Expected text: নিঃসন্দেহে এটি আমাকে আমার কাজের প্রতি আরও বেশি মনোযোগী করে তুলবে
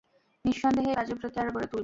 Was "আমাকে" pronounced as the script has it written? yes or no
no